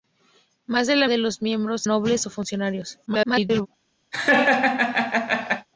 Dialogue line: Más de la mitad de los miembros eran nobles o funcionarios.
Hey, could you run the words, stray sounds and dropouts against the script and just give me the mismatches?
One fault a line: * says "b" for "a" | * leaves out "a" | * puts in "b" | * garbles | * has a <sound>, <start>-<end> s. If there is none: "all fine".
* leaves out "mitad"
* leaves out "eran"
* garbles
* has a laugh, 4.1-5.7 s